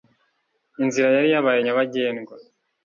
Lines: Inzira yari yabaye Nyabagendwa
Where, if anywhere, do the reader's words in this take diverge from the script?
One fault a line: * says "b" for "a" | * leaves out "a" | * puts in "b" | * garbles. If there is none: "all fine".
all fine